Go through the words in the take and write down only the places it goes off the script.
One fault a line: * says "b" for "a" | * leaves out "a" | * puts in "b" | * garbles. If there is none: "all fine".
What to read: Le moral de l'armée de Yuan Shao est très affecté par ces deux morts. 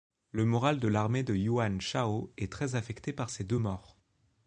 all fine